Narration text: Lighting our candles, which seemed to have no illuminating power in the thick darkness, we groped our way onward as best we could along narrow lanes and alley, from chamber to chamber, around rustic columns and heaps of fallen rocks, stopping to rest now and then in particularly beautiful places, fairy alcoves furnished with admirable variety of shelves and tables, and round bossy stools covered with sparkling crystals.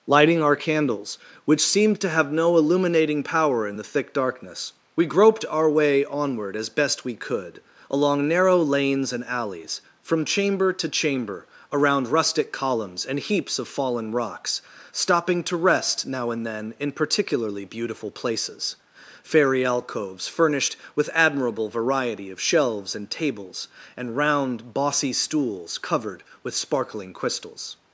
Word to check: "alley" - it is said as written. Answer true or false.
false